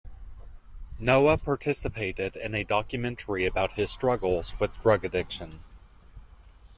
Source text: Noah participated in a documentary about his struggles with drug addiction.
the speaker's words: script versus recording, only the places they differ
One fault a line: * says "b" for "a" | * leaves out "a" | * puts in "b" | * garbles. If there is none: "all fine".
all fine